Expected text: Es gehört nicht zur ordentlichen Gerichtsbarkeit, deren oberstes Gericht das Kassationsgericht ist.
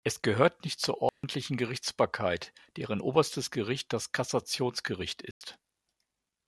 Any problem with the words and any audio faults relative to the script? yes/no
yes